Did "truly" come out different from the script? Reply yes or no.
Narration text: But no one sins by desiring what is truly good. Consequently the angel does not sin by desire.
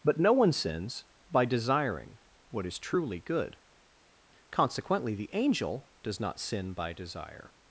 no